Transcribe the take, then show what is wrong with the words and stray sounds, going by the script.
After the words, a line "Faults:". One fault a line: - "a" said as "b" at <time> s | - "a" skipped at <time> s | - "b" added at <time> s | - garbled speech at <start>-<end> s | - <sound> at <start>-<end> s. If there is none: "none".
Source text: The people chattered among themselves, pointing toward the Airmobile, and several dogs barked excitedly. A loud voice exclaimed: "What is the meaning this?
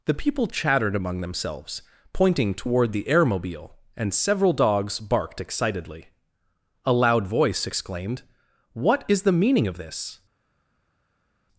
The people chattered among themselves, pointing toward the Airmobile, and several dogs barked excitedly. A loud voice exclaimed: "What is the meaning of this?
Faults:
- "of" added at 9.7 s